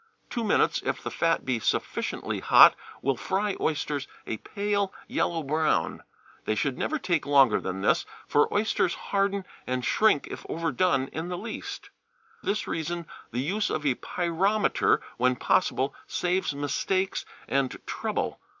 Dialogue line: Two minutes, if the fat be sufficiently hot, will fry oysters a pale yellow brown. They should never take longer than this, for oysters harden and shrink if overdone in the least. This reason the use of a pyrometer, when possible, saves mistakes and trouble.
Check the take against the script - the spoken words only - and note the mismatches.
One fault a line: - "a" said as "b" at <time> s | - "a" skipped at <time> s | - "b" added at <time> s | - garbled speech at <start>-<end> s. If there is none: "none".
none